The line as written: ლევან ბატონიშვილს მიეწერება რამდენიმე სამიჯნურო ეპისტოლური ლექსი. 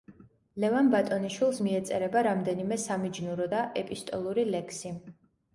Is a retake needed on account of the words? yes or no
yes